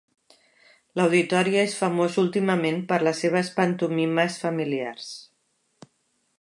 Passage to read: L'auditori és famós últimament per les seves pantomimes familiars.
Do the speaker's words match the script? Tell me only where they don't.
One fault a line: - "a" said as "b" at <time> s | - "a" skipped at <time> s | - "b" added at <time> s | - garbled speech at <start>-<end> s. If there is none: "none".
none